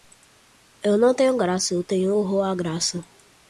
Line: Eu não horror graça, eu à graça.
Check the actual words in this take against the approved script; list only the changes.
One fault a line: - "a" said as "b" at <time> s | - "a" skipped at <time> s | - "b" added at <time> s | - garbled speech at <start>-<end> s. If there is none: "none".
- "horror" said as "tenho" at 1.1 s
- "tenho horror" added at 1.8 s